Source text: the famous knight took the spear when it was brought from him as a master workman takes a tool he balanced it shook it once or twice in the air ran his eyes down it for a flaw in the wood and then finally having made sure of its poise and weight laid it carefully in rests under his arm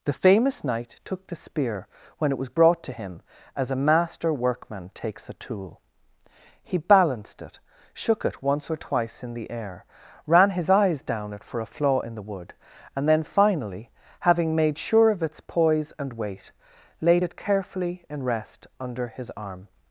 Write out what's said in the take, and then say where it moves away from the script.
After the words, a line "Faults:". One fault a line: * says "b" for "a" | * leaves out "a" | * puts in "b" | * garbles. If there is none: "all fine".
the famous knight took the spear when it was brought to him as a master workman takes a tool he balanced it shook it once or twice in the air ran his eyes down it for a flaw in the wood and then finally having made sure of its poise and weight laid it carefully in rest under his arm
Faults:
* says "to" for "from"
* says "rest" for "rests"